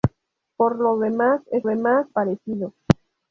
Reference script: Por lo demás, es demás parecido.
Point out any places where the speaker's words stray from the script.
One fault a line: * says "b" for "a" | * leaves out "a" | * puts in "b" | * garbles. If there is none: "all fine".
all fine